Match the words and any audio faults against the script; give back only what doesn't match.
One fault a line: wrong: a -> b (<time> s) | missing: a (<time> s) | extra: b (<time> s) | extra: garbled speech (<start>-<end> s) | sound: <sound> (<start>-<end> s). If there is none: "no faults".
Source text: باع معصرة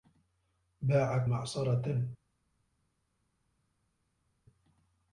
no faults